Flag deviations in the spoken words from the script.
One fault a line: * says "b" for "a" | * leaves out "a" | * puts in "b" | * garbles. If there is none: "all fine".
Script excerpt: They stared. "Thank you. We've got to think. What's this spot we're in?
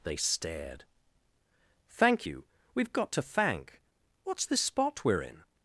* says "thank" for "think"